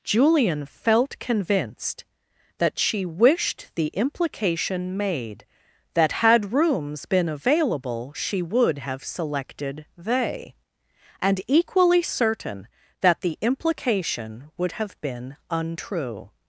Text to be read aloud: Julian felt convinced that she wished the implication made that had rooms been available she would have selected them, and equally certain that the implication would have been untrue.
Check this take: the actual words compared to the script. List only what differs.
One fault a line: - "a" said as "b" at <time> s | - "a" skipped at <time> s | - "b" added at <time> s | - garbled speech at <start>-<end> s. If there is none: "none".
- "them" said as "they" at 10.0 s